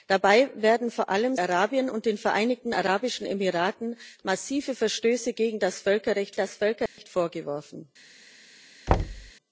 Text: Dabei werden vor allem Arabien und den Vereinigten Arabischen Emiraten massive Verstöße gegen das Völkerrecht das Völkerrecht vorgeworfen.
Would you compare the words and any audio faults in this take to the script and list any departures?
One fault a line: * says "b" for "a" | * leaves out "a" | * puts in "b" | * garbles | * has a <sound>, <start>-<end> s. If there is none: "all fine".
* has a dropout, 6.9-7.0 s
* has a thud, 8.9-9.3 s